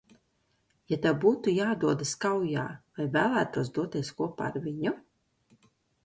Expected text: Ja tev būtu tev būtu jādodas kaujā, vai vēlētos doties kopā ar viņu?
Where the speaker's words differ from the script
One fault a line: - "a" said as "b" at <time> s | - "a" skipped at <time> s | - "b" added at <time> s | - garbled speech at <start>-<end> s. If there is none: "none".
- "tev būtu" skipped at 1.5 s